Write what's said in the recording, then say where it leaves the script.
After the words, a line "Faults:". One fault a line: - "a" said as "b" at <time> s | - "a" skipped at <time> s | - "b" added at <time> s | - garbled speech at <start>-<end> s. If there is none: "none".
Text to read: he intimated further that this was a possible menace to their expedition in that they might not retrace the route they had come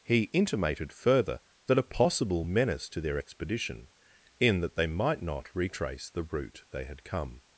he intimated further that a possible menace to their expedition in that they might not retrace the route they had come
Faults:
- "this was" skipped at 1.8 s